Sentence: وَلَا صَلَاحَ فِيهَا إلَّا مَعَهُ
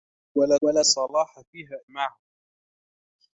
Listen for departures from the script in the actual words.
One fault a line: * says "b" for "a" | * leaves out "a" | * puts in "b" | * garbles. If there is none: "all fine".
* puts in "وَلَا"
* leaves out "إلَّا"